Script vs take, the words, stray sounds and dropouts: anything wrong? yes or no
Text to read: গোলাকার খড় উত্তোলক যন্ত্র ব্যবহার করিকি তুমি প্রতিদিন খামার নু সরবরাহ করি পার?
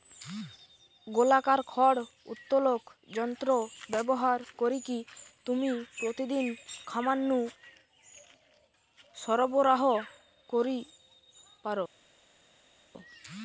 no